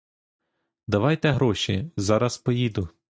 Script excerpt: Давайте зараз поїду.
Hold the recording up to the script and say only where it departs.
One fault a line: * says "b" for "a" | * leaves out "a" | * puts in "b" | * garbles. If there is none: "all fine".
* puts in "гроші"